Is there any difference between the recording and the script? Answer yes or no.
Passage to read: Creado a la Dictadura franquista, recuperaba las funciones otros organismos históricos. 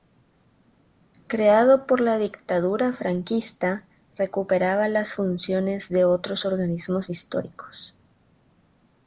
yes